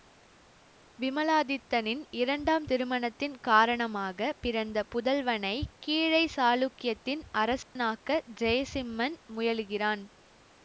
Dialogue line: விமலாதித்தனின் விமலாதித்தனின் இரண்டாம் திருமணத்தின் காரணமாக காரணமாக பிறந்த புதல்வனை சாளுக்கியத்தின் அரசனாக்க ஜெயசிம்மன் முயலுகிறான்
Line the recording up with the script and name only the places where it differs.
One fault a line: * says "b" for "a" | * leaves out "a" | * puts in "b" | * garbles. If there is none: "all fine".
* leaves out "விமலாதித்தனின்"
* leaves out "காரணமாக"
* puts in "கீழை"